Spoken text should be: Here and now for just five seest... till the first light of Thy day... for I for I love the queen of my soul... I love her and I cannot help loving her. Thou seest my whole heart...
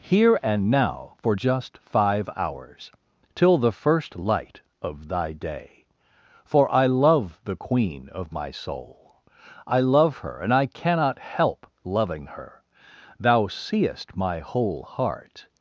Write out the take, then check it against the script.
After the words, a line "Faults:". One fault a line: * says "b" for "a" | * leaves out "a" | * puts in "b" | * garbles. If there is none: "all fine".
Here and now for just five hours... till the first light of Thy day... for I love the queen of my soul... I love her and I cannot help loving her. Thou seest my whole heart...
Faults:
* says "hours" for "seest"
* leaves out "for I"